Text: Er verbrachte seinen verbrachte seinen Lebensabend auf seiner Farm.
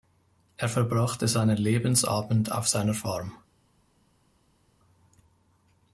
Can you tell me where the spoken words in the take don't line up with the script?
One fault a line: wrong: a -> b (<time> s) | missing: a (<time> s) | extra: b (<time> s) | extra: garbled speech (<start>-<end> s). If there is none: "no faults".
missing: verbrachte seinen (1.6 s)